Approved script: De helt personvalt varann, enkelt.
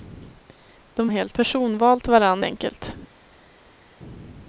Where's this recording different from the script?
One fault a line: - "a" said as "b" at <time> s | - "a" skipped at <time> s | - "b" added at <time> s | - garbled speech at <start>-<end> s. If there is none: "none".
none